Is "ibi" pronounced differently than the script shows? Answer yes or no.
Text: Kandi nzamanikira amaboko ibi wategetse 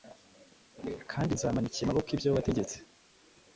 yes